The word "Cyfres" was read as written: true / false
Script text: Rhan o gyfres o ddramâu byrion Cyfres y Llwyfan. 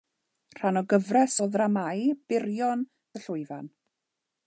false